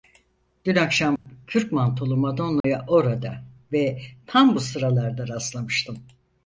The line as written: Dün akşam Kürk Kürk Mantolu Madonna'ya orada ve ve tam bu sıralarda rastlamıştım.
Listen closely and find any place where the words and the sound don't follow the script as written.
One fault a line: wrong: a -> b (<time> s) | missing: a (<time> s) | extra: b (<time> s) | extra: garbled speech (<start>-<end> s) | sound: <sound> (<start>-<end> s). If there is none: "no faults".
sound: dropout (1.2-1.3 s)
missing: Kürk (1.7 s)
sound: dropout (2.6-2.6 s)
missing: ve (4.0 s)